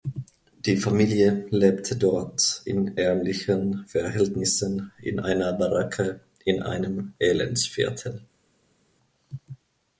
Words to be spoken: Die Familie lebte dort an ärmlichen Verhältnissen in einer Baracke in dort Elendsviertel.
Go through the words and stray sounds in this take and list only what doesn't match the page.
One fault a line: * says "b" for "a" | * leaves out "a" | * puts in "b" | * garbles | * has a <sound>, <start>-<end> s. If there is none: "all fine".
* says "in" for "an"
* says "einem" for "dort"